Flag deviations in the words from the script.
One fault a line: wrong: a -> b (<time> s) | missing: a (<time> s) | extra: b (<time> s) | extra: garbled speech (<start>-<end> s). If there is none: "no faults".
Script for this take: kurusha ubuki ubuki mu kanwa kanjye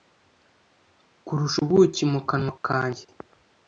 missing: ubuki (2.0 s)